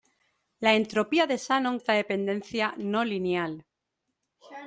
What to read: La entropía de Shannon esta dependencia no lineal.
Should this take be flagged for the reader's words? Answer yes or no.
no